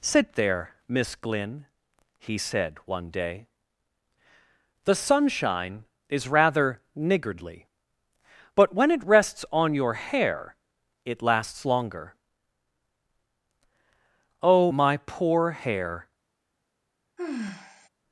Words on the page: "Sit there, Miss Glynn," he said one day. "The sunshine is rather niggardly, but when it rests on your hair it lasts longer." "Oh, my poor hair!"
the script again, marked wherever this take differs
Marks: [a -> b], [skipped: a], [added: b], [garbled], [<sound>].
"Sit there, Miss Glynn," he said one day. "The sunshine is rather niggardly, but when it rests on your hair it lasts longer." "Oh, my poor hair!" [sigh]